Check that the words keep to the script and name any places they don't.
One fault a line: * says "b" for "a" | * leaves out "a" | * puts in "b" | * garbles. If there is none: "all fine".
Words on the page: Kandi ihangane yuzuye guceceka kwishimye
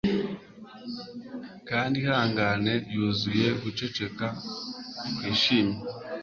all fine